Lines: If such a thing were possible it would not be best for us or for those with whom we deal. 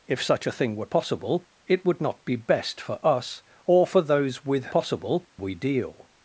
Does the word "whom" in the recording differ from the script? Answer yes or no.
yes